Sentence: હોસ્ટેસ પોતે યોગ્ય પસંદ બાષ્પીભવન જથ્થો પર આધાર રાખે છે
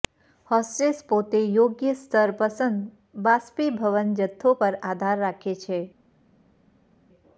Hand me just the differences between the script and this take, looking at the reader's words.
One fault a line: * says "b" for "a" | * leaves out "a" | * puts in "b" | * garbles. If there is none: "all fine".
* puts in "સ્તર"